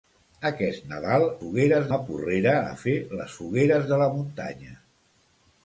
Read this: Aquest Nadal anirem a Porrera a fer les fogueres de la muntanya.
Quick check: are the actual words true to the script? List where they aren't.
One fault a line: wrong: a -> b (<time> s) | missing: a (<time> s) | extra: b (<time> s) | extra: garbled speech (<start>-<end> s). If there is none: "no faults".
wrong: anirem -> fogueres (1.4 s)